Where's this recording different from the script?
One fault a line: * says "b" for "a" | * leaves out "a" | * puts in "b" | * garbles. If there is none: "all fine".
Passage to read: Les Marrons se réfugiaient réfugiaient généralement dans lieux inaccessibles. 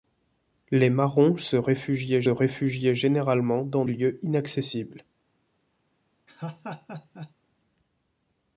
all fine